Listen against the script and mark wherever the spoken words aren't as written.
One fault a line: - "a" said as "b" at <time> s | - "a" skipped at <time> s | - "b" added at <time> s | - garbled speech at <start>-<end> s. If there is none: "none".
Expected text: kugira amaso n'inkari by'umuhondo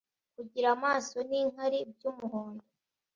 none